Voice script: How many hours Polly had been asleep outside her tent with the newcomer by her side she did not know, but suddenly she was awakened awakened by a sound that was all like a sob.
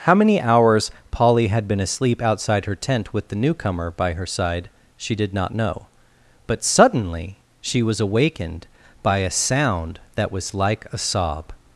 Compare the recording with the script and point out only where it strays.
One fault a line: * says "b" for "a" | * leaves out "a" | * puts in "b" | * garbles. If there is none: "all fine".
* leaves out "awakened"
* leaves out "all"